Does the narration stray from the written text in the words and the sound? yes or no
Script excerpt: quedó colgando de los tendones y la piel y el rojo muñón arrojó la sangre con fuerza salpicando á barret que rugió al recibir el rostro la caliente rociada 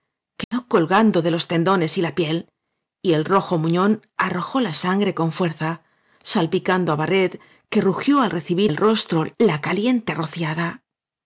yes